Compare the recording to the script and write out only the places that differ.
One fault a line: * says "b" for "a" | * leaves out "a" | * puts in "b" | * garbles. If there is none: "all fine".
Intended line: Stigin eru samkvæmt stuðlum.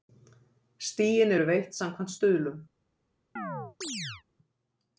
* puts in "veitt"